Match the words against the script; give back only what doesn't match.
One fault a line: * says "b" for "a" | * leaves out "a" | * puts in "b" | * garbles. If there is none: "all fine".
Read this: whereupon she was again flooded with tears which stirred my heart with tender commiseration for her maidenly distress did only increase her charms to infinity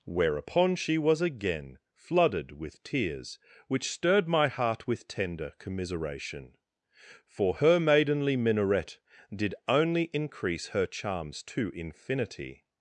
* says "minaret" for "distress"